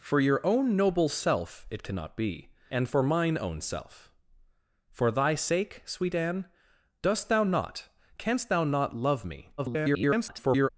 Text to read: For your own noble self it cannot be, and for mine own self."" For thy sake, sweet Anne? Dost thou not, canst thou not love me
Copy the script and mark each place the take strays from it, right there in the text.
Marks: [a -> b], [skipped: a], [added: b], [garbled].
For your own noble self it cannot be, and for mine own self."" For thy sake, sweet Anne? Dost thou not, canst thou not love me [garbled]